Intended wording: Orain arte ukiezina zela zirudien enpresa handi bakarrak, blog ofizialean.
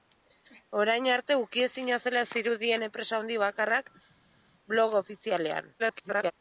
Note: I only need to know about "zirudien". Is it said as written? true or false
true